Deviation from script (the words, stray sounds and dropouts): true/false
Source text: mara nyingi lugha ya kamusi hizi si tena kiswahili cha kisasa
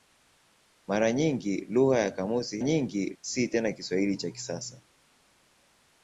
true